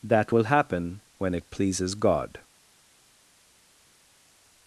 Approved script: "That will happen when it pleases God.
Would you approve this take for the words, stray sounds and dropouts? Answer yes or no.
yes